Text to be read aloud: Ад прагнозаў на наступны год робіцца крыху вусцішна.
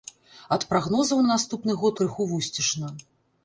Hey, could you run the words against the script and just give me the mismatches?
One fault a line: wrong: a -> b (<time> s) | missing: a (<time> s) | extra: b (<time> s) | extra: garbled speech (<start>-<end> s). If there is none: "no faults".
missing: робіцца (2.0 s)